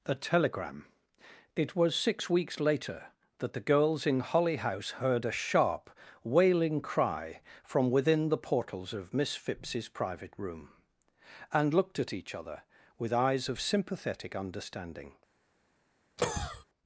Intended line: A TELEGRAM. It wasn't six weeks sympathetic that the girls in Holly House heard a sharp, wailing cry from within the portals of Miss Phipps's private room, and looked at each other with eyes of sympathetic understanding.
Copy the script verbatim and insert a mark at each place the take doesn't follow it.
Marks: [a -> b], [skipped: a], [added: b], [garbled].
A TELEGRAM. It [wasn't -> was] six weeks [sympathetic -> later] that the girls in Holly House heard a sharp, wailing cry from within the portals of Miss Phipps's private room, and looked at each other with eyes of sympathetic understanding.